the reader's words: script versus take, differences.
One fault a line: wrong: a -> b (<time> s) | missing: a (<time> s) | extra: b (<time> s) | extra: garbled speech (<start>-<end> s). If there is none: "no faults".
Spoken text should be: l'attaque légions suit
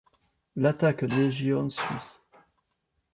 no faults